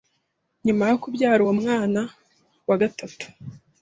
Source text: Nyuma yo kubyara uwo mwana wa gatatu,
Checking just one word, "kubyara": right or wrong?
right